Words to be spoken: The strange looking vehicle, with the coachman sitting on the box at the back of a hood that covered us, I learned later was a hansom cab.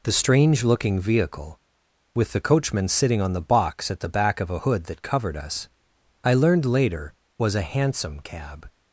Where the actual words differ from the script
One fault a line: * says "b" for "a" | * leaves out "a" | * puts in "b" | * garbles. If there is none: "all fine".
all fine